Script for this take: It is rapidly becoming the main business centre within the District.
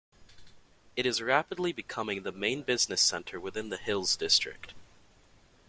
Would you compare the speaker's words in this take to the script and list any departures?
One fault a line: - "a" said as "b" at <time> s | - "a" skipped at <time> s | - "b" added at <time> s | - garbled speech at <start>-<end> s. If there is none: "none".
- "Hills" added at 3.8 s